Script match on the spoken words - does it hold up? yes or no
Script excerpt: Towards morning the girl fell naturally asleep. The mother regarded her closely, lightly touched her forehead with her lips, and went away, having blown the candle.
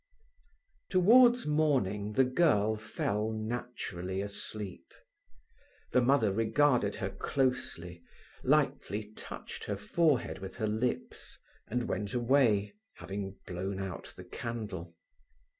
no